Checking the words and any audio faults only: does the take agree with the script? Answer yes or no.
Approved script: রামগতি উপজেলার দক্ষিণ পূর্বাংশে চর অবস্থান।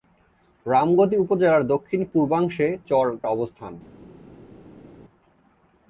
yes